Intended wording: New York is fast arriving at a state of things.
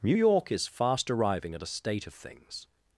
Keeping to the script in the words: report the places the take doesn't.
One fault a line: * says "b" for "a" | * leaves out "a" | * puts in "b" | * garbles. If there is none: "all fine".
all fine